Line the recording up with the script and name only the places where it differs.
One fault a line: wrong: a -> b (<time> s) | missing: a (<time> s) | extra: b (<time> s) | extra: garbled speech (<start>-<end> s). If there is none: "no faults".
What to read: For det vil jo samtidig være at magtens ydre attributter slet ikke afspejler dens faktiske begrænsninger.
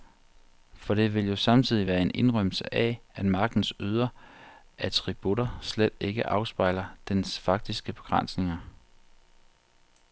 extra: en indrømmelse af (2.0 s)